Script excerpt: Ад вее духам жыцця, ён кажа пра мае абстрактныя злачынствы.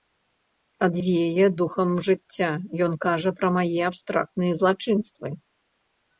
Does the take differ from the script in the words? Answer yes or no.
no